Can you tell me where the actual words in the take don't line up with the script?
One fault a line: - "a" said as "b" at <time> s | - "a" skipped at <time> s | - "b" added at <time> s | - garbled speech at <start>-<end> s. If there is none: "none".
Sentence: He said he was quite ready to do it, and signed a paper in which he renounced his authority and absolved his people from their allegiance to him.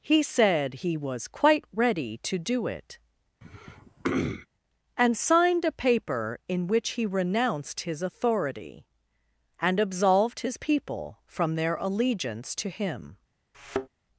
none